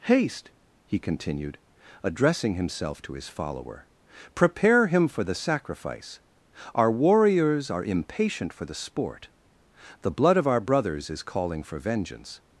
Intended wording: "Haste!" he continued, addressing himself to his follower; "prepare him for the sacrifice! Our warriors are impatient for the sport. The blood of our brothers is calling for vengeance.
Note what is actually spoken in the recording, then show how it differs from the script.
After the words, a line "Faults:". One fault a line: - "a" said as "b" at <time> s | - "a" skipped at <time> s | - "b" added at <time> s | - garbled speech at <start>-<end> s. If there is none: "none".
"Haste!" he continued, addressing himself to his follower; "prepare him for the sacrifice! Our warriors are impatient for the sport. The blood of our brothers is calling for vengeance.
Faults:
none